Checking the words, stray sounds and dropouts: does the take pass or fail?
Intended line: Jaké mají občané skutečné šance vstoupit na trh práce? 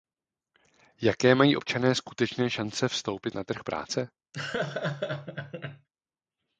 fail